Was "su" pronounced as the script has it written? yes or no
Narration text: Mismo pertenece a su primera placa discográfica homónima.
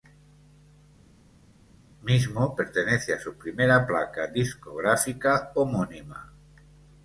yes